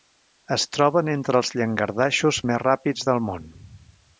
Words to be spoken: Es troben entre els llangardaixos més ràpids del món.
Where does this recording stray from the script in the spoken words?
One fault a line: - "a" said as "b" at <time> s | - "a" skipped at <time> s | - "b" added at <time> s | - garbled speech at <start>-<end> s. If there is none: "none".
none